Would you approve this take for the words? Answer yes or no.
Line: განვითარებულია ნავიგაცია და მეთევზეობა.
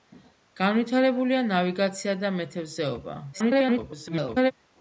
no